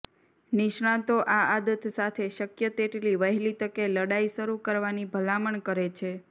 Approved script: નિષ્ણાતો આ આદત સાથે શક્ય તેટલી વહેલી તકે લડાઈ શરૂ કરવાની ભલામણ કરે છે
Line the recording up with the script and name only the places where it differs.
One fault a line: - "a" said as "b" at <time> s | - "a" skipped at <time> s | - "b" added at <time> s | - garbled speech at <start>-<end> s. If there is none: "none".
none